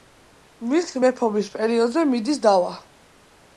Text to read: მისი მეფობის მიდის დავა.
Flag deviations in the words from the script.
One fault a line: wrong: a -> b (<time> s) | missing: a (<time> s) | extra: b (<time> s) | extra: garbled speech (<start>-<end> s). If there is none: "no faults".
extra: პერიოდზე (1.6 s)